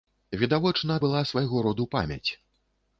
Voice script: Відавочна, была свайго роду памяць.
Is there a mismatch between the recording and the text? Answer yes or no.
no